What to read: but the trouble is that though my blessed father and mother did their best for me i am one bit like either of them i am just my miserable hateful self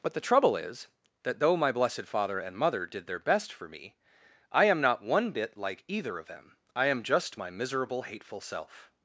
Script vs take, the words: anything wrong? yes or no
yes